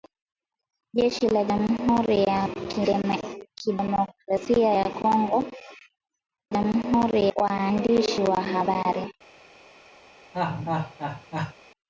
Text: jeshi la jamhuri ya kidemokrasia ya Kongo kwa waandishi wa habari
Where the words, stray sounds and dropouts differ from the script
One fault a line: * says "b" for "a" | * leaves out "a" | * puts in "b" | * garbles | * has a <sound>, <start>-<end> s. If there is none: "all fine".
* says "jamhuri" for "kwa"
* has a laugh, 10.3-11.5 s